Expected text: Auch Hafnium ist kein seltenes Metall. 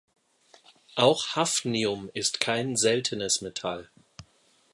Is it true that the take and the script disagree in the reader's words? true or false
false